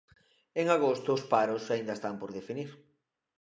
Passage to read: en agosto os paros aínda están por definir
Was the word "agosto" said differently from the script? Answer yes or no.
no